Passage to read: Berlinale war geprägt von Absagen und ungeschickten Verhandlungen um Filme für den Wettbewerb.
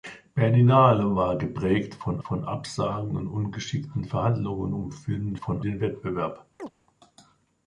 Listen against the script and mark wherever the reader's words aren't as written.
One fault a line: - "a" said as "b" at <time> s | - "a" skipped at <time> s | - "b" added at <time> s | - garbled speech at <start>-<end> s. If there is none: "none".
- "von" added at 2.2 s
- "für" said as "von" at 5.3 s